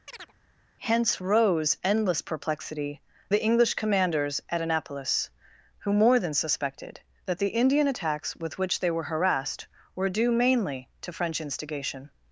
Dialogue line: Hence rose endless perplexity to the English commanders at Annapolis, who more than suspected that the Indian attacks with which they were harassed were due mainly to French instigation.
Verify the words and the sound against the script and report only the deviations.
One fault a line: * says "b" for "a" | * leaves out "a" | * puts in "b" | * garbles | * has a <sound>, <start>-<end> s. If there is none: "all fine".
* has a chirp, 0.1-0.3 s
* leaves out "to"